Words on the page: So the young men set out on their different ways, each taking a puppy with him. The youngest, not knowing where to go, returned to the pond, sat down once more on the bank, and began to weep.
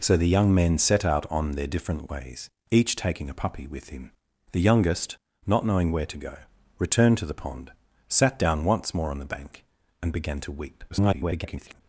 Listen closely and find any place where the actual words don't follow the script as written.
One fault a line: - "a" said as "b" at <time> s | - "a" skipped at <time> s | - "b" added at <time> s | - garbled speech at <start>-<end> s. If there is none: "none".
- garbled speech at 10.9-11.8 s